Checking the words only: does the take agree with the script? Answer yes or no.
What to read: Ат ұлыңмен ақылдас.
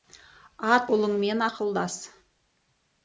yes